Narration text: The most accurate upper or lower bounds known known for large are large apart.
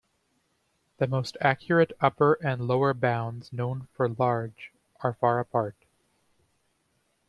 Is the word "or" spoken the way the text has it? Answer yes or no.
no